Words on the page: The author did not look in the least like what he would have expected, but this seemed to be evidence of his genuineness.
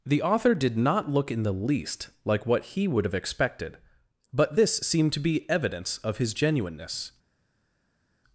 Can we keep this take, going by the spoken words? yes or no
yes